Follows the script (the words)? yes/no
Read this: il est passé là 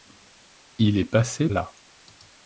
yes